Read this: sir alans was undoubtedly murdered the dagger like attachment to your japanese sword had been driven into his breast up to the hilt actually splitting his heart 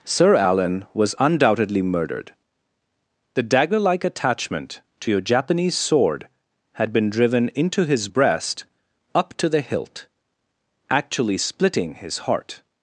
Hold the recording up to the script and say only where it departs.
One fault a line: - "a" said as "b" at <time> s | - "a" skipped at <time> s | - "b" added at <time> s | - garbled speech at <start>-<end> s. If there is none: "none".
- "alans" said as "alan" at 0.3 s